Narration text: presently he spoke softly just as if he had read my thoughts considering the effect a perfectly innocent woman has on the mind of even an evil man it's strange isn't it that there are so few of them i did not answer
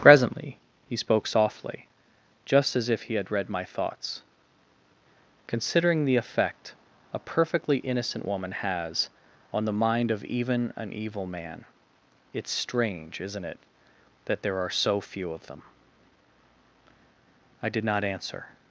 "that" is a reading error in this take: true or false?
false